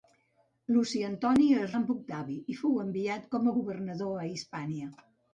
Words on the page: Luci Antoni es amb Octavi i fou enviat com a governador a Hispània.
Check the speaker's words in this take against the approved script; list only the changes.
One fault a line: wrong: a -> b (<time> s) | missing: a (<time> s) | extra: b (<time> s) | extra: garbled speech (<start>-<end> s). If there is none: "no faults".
no faults